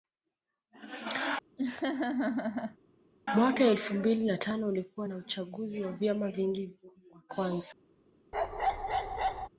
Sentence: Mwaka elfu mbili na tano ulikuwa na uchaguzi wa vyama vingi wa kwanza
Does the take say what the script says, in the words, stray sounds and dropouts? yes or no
no